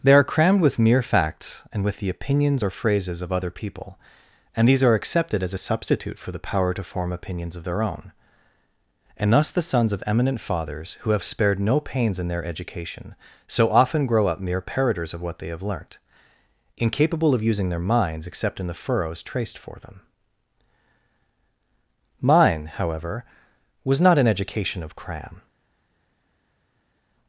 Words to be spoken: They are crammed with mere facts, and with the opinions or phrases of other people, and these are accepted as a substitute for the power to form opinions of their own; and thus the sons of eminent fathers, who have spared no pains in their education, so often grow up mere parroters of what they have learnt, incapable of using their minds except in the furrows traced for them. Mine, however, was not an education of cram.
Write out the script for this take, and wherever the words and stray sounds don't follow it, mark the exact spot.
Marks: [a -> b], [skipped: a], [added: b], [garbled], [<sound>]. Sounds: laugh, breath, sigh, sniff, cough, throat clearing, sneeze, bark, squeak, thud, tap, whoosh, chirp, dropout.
They are crammed with mere facts, and with the opinions or phrases of other people, and these are accepted as a substitute for the power to form opinions of their own; and thus the sons of eminent fathers, who have spared no pains in their education, so often grow up mere parroters of what they have learnt, incapable of using their minds except in the furrows traced for them. Mine, however, was not an education of cram.